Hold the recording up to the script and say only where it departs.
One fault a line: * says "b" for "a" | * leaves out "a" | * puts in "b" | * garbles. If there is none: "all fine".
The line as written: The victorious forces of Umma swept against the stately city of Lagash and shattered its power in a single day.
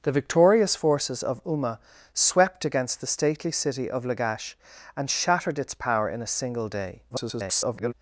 * garbles